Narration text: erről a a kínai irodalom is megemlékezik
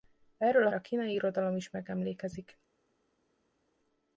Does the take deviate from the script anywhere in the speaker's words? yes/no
no